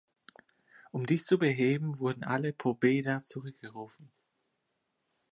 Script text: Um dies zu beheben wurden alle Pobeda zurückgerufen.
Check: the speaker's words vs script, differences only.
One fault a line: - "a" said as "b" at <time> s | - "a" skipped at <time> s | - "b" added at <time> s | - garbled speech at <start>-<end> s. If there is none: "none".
none